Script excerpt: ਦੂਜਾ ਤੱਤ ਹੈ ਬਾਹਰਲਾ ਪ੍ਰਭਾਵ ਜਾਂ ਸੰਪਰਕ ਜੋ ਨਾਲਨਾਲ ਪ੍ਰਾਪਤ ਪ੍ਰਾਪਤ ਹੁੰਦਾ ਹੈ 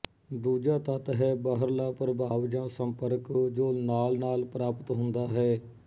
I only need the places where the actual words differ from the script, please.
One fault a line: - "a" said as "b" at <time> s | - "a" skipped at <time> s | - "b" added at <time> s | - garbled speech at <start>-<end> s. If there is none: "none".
- "ਪ੍ਰਾਪਤ" skipped at 4.9 s